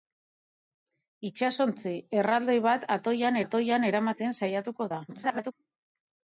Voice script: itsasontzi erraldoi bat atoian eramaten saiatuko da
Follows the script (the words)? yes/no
no